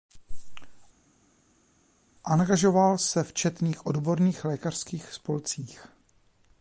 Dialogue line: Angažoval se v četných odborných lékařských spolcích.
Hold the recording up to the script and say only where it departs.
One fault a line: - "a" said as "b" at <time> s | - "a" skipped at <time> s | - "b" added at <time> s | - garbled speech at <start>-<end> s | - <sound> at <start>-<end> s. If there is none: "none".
none